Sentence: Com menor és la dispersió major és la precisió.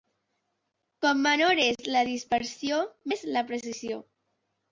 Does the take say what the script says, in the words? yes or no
no